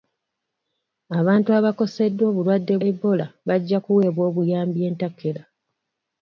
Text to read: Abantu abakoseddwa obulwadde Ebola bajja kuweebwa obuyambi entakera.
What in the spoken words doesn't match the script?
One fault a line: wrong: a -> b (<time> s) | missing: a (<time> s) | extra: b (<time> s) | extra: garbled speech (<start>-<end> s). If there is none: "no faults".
no faults